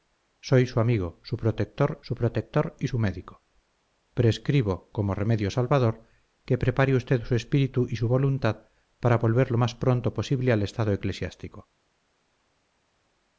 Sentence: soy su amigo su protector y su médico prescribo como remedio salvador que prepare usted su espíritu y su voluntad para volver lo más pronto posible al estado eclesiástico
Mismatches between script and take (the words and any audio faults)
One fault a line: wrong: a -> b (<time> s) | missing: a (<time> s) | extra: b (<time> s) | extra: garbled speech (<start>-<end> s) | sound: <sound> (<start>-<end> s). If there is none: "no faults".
extra: su protector (2.0 s)